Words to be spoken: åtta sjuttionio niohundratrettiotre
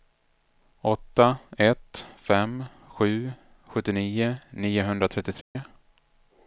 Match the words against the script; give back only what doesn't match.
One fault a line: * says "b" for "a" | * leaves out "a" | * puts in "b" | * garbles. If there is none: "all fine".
* puts in "ett fem sju"